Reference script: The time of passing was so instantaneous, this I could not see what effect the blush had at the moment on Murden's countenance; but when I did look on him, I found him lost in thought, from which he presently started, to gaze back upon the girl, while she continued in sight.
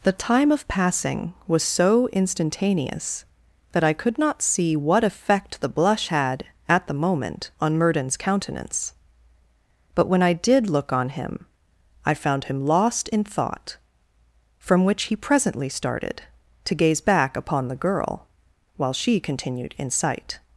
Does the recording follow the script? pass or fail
fail